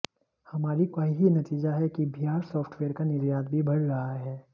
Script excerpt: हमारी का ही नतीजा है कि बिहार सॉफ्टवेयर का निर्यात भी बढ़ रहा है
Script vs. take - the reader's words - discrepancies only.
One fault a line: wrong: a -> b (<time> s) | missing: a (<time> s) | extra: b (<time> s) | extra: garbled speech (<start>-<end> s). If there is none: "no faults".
no faults